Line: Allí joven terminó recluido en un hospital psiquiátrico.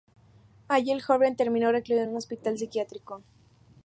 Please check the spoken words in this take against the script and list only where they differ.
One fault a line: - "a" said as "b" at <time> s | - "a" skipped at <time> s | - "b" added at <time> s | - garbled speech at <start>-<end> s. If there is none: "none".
- "el" added at 0.9 s